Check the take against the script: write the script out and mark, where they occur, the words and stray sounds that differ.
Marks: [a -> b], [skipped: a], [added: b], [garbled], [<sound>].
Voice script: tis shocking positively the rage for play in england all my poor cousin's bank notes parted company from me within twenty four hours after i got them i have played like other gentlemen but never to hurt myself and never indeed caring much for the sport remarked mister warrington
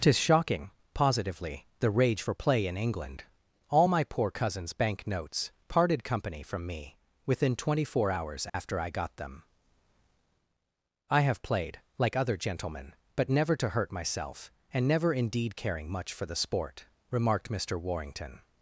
tis shocking positively the rage for play in england all my poor cousin's bank notes parted company from me within twenty four hours after [dropout] i got them i have played like other gentlemen but never to hurt myself and never indeed caring much for the sport remarked mister warrington